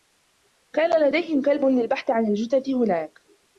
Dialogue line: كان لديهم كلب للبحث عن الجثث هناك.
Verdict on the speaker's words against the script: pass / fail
pass